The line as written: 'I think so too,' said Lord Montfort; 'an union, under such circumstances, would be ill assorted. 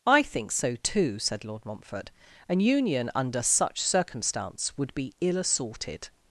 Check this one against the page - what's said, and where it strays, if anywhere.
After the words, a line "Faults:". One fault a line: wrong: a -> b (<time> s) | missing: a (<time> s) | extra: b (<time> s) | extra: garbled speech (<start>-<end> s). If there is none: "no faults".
'I think so too,' said Lord Montfort; 'an union, under such circumstance, would be ill assorted.
Faults:
wrong: circumstances -> circumstance (3.8 s)